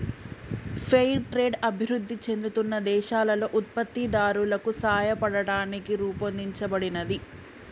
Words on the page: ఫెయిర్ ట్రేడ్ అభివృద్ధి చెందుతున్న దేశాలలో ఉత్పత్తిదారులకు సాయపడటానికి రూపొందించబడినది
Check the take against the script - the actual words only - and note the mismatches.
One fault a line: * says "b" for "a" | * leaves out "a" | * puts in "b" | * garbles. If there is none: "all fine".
all fine